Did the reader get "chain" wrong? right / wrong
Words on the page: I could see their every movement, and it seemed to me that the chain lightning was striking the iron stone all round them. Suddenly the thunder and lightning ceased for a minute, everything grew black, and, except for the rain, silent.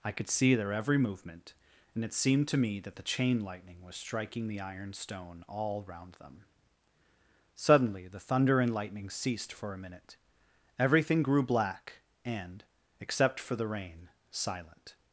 right